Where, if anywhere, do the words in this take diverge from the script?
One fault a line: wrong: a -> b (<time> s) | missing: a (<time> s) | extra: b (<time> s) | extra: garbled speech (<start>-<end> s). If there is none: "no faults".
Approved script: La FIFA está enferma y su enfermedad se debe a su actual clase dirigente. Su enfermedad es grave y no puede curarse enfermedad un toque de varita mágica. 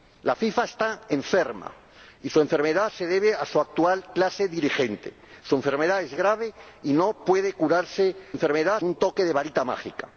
no faults